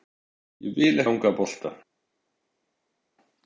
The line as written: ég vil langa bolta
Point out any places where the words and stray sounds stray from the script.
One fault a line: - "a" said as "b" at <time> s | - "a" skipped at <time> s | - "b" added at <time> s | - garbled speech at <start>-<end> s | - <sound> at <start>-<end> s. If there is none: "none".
none